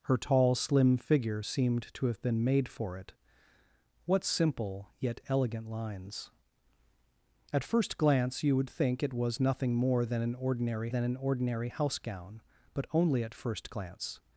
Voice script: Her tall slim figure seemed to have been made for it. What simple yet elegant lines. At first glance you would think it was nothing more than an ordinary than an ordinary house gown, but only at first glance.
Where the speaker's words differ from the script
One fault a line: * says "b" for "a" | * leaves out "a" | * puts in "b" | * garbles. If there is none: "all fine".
all fine